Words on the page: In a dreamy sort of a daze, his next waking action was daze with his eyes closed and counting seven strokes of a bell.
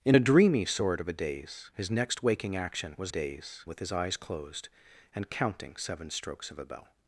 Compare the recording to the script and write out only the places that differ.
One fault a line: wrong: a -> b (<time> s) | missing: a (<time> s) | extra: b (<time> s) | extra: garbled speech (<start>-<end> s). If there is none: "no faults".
no faults